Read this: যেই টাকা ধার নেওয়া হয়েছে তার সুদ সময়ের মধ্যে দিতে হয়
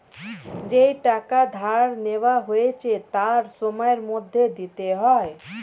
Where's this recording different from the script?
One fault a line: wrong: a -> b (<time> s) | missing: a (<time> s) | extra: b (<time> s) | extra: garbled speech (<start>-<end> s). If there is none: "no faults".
missing: সুদ (3.4 s)